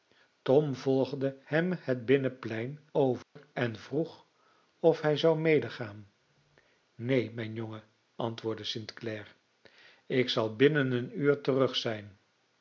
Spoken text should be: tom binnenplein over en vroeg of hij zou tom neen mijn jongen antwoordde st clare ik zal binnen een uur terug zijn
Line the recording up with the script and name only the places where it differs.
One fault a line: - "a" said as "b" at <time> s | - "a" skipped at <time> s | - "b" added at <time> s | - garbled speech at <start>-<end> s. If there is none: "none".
- "volgde hem het" added at 0.8 s
- "tom" said as "medegaan" at 5.4 s